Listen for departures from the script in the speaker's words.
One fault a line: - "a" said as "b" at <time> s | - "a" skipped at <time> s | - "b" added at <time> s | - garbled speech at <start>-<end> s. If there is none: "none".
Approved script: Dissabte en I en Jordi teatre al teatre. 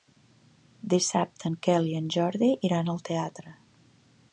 - "Quel" added at 1.7 s
- "teatre" said as "iran" at 2.7 s